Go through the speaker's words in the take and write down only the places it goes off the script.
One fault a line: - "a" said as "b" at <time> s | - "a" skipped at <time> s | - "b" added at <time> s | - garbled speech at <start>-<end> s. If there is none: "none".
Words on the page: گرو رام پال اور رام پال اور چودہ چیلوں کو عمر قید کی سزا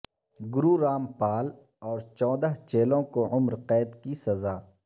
- "رام پال اور" skipped at 2.0 s